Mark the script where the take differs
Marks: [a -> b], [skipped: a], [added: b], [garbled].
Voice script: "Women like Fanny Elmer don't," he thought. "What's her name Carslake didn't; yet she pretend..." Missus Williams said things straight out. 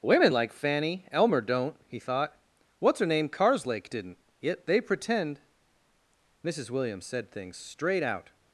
"Women like Fanny Elmer don't," he thought. "What's her name Carslake didn't; yet [she -> they] pretend..." Missus Williams said things straight out.